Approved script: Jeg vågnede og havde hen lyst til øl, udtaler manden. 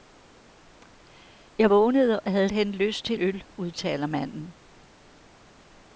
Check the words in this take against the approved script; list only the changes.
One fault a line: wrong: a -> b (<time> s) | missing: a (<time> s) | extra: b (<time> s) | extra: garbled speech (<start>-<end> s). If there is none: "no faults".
no faults